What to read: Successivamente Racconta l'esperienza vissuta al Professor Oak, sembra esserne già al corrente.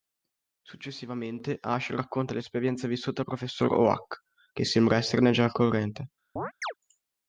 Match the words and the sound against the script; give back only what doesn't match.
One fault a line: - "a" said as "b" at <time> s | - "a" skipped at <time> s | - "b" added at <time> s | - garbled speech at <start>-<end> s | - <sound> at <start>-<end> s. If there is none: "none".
- "Ash" added at 1.6 s
- "che" added at 4.5 s
- chirp at 6.4-6.7 s